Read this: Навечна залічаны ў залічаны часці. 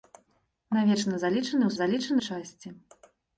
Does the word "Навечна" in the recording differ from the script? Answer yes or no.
no